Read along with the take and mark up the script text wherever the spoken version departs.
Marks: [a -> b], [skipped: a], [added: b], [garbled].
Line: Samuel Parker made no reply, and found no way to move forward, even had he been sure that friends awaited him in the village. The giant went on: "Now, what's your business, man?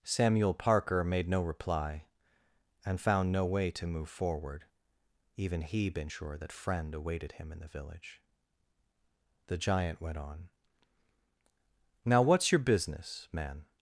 Samuel Parker made no reply, and found no way to move forward, even [skipped: had] he been sure that [friends -> friend] awaited him in the village. The giant went on: "Now, what's your business, man?